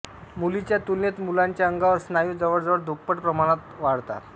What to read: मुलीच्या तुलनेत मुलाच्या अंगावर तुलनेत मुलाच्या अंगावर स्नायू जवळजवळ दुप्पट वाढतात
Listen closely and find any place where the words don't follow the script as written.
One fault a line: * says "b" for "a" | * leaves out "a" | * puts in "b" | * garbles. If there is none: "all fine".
* leaves out "तुलनेत मुलाच्या अंगावर"
* puts in "प्रमाणात"